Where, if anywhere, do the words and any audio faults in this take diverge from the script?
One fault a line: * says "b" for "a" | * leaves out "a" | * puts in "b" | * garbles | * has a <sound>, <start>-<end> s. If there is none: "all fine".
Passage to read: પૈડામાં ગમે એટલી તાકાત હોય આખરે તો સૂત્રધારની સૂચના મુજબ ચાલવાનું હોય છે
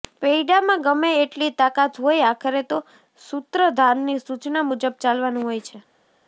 all fine